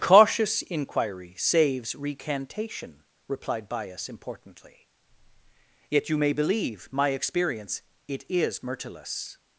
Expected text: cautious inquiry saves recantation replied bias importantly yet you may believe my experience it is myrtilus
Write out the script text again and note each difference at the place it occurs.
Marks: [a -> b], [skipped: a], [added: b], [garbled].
cautious inquiry saves recantation replied bias importantly yet you may believe my experience it is myrtilus